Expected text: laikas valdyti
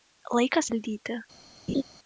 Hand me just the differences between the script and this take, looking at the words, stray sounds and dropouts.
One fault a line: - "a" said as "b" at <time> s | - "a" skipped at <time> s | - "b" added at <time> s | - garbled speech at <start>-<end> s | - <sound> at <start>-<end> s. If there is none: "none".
- laugh at 1.7-1.8 s